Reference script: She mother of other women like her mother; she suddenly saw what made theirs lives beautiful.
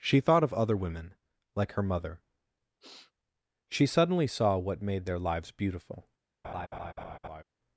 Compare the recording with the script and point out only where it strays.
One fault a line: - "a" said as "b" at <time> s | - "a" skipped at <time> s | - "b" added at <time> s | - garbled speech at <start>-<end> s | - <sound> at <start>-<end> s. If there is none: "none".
- "mother" said as "thought" at 0.2 s
- sniff at 2.8-3.1 s
- "theirs" said as "their" at 5.1 s
- laugh at 6.4-7.4 s